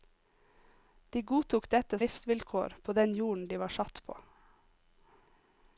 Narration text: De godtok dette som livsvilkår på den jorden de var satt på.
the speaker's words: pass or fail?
fail